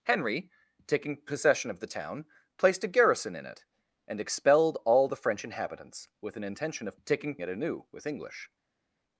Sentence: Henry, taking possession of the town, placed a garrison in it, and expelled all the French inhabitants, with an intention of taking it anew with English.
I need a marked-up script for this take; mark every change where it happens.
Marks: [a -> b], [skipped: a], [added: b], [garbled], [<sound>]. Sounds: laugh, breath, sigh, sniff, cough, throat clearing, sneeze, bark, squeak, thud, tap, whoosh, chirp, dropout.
Henry, taking possession of the town, placed a garrison in it, and expelled all the French inhabitants, with an intention of taking it anew with English.